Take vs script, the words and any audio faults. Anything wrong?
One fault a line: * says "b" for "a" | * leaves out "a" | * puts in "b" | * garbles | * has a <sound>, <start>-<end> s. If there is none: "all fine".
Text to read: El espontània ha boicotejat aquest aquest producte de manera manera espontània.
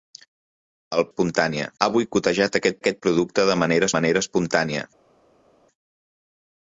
all fine